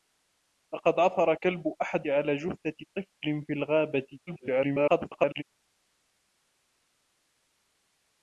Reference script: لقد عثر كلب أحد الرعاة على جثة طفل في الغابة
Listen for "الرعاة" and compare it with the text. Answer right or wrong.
wrong